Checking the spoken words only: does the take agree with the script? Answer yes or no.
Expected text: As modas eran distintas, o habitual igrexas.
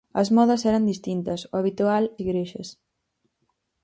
yes